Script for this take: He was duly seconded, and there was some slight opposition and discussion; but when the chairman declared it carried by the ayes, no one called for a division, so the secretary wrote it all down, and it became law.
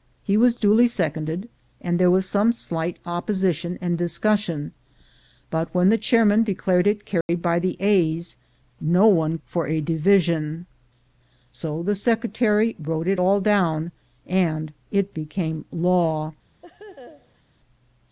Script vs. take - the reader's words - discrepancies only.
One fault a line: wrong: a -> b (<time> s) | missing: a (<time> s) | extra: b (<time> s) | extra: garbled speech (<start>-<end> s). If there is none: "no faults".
missing: called (9.4 s)